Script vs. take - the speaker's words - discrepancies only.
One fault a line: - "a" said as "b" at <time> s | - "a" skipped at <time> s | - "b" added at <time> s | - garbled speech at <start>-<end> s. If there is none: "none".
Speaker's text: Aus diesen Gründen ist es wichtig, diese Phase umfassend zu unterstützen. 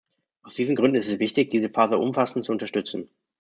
none